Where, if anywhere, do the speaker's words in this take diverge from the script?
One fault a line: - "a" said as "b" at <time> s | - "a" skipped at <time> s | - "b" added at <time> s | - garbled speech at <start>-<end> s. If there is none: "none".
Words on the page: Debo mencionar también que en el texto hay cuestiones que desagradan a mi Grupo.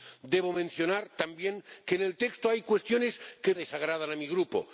none